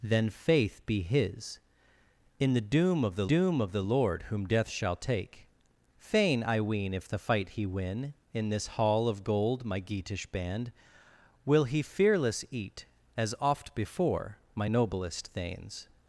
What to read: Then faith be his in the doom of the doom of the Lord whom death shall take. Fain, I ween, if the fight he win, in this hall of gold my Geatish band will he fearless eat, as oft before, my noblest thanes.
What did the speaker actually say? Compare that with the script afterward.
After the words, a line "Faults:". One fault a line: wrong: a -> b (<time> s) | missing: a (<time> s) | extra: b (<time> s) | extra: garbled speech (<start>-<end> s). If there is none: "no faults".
Then faith be his in the doom of the doom of the Lord whom death shall take. Fain, I ween, if the fight he win, in this hall of gold my Geatish band will he fearless eat, as oft before, my noblest thanes.
Faults:
no faults